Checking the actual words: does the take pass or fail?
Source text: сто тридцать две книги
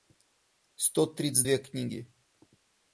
pass